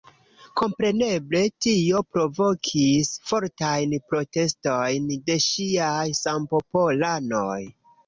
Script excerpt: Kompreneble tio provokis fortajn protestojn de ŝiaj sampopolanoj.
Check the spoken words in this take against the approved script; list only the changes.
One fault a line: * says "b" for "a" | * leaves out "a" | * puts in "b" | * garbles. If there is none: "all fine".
all fine